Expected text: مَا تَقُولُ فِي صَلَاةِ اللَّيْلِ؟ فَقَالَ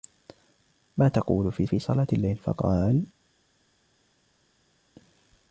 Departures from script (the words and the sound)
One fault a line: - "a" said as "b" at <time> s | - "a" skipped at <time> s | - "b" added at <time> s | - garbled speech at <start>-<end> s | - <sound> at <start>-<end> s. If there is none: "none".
- "فِي" added at 1.6 s